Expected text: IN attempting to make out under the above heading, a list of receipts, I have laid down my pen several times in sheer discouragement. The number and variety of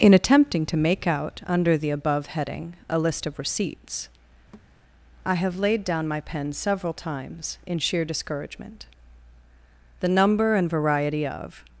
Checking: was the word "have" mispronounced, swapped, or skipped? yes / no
no